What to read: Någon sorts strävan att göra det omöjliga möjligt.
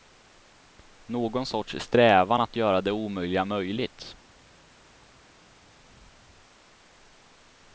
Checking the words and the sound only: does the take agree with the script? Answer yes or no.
yes